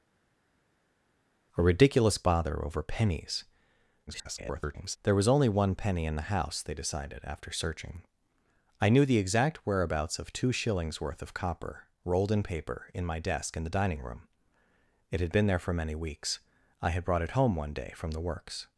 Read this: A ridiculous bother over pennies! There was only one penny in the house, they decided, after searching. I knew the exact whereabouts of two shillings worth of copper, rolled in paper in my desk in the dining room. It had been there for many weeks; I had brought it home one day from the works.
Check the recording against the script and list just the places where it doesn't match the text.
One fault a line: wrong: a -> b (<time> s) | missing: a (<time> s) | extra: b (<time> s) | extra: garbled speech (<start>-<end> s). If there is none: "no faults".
extra: garbled speech (4.1-5.0 s)